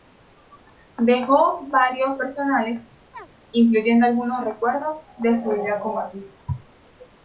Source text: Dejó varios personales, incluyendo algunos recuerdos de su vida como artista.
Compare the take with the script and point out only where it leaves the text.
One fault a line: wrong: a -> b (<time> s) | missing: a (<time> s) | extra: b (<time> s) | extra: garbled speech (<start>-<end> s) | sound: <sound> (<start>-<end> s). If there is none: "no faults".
sound: chirp (3.1-3.3 s)